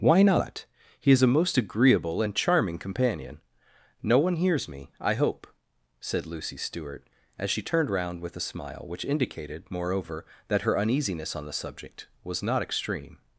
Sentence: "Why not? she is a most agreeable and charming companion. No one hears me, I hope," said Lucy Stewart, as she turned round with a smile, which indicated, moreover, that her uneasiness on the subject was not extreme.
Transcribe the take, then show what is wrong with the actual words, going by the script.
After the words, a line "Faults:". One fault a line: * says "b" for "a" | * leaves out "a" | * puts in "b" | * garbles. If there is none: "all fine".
"Why not? he is a most agreeable and charming companion. No one hears me, I hope," said Lucy Stewart, as she turned round with a smile, which indicated, moreover, that her uneasiness on the subject was not extreme.
Faults:
* says "he" for "she"